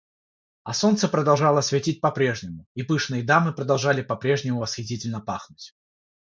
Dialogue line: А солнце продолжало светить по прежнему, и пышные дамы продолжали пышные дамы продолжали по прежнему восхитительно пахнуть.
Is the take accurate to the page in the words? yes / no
no